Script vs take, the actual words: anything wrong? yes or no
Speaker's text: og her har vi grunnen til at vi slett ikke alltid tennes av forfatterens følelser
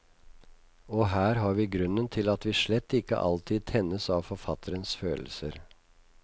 no